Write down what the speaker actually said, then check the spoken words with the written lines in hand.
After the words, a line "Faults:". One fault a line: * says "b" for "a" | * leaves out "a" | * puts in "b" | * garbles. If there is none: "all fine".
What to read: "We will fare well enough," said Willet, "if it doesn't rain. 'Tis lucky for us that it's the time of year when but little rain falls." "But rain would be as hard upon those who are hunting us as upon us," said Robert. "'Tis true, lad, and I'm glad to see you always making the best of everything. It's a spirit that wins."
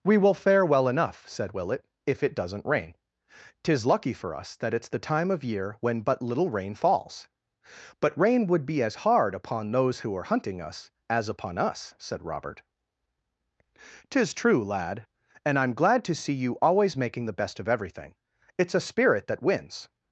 "We will fare well enough," said Willet, "if it doesn't rain. 'Tis lucky for us that it's the time of year when but little rain falls." "But rain would be as hard upon those who are hunting us as upon us," said Robert. "'Tis true, lad, and I'm glad to see you always making the best of everything. It's a spirit that wins."
Faults:
all fine